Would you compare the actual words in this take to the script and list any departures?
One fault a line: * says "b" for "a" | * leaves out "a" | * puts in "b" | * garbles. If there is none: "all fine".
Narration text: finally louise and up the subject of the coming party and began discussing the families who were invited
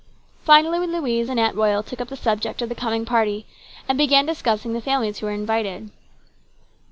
* puts in "aunt royal took"